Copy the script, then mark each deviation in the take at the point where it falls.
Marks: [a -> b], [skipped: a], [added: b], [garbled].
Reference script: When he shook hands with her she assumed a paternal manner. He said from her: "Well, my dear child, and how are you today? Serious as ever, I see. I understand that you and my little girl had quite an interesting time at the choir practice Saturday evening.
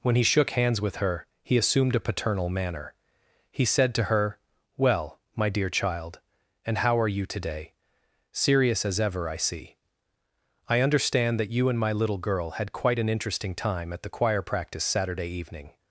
When he shook hands with her [she -> he] assumed a paternal manner. He said [from -> to] her: "Well, my dear child, and how are you today? Serious as ever, I see. I understand that you and my little girl had quite an interesting time at the choir practice Saturday evening.